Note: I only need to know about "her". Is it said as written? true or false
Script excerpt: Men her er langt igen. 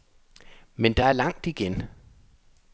false